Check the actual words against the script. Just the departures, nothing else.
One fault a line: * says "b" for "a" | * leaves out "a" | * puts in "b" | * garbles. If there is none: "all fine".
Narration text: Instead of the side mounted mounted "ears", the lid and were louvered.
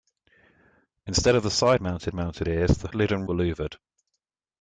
all fine